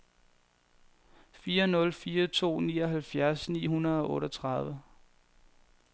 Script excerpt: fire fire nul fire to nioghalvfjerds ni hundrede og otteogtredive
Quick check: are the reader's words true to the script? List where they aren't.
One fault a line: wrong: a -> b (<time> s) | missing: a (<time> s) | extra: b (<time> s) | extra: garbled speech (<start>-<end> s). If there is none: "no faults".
missing: fire (1.7 s)